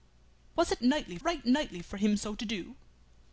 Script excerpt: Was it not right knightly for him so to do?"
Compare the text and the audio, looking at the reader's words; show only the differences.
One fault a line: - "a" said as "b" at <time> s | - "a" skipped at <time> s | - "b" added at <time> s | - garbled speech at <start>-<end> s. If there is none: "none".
- "not" said as "knightly" at 0.8 s